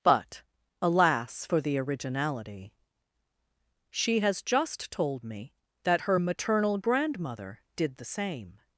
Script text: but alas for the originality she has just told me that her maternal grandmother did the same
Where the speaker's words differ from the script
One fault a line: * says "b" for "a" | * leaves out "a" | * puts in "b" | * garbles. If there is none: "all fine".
all fine